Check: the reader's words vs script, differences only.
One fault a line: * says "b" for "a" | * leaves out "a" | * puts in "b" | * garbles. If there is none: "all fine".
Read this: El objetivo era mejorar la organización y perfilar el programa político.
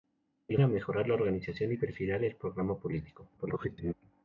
* leaves out "objetivo"
* garbles